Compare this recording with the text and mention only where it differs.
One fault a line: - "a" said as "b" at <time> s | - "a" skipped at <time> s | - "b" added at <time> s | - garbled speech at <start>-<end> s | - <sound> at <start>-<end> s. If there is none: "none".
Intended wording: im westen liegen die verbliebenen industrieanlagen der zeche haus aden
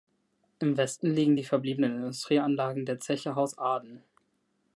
none